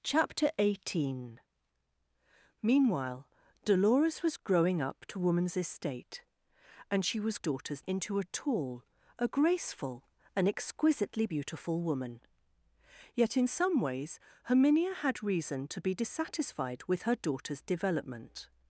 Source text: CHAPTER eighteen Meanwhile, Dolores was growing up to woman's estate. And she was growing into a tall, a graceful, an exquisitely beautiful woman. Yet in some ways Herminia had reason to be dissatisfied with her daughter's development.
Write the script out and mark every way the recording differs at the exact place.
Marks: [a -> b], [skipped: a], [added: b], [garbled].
CHAPTER eighteen Meanwhile, Dolores was growing up to woman's estate. And she was [growing -> daughter's] into a tall, a graceful, an exquisitely beautiful woman. Yet in some ways Herminia had reason to be dissatisfied with her daughter's development.